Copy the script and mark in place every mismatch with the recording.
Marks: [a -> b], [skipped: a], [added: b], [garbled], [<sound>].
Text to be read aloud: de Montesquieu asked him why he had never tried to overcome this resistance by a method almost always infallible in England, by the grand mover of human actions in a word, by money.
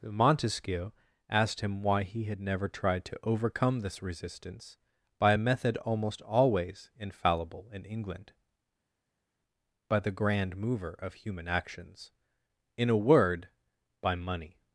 [skipped: de] Montesquieu asked him why he had never tried to overcome this resistance by a method almost always infallible in England, by the grand mover of human actions in a word, by money.